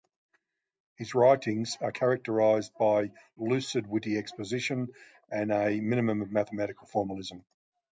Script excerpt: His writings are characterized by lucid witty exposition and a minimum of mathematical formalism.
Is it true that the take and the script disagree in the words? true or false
false